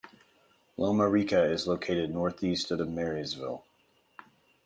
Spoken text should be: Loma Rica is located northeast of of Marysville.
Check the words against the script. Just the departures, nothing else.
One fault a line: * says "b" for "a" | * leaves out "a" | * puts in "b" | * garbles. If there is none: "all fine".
all fine